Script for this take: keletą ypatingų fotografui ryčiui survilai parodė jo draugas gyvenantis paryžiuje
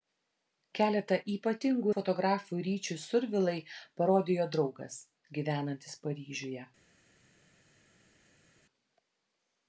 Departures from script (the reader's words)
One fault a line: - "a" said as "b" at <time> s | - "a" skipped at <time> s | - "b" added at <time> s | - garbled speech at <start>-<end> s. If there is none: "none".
none